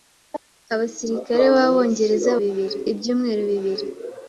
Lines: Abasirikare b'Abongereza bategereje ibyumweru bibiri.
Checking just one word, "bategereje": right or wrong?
wrong